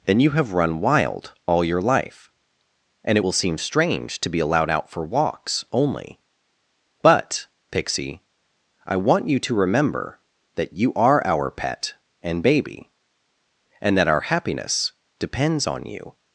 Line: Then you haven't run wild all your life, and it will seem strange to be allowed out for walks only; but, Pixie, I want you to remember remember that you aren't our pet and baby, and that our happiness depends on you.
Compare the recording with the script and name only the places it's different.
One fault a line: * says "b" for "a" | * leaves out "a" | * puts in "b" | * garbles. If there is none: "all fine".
* says "have" for "haven't"
* leaves out "remember"
* says "are" for "aren't"